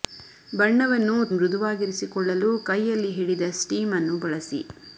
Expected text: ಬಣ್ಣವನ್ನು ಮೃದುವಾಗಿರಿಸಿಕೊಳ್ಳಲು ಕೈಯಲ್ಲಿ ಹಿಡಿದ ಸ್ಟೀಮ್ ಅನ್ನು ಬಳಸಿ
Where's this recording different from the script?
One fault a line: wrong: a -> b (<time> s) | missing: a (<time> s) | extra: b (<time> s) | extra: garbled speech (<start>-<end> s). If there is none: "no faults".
no faults